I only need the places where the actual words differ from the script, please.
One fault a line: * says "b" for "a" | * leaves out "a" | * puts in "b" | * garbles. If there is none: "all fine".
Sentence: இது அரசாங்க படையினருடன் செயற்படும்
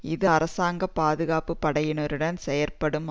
* puts in "பாதுகாப்பு"